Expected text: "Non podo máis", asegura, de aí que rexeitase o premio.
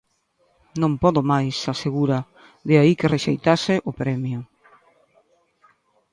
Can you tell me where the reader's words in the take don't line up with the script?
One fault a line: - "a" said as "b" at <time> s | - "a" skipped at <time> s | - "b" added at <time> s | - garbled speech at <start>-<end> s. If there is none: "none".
none